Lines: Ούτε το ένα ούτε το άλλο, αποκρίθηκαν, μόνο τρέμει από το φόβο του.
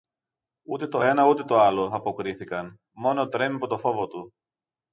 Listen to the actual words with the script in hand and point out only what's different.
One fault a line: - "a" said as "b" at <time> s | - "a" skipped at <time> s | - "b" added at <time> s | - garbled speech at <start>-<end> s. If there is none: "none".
none